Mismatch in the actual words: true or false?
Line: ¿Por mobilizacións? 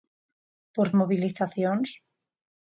false